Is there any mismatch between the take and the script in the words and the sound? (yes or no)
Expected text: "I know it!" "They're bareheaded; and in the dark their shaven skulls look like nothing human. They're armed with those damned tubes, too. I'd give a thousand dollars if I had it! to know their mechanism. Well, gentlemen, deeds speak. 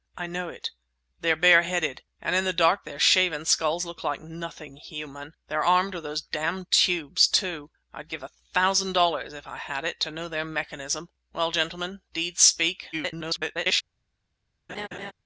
yes